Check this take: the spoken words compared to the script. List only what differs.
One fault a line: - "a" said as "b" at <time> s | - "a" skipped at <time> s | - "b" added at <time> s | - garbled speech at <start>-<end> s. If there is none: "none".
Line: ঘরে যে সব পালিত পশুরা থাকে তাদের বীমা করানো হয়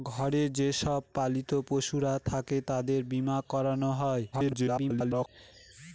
- garbled speech at 4.3-5.3 s